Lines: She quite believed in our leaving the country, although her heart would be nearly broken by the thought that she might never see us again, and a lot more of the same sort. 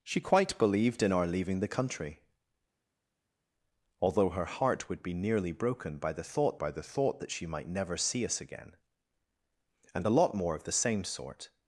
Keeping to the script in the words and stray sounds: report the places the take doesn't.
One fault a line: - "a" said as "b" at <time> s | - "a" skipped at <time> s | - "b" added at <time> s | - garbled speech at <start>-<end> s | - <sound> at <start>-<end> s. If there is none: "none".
- "by the thought" added at 6.6 s